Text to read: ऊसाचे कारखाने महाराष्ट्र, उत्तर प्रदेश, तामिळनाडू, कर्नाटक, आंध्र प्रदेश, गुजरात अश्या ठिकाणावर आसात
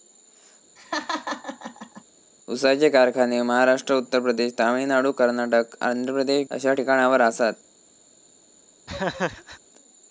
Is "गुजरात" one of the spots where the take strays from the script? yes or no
yes